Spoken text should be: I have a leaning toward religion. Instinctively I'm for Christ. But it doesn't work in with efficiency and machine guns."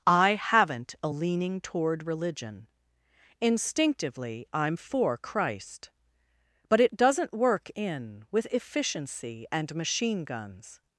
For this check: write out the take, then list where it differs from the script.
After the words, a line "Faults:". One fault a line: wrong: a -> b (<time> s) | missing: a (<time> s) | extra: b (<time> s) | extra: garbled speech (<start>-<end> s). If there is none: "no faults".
I haven't a leaning toward religion. Instinctively I'm for Christ. But it doesn't work in with efficiency and machine guns."
Faults:
wrong: have -> haven't (0.3 s)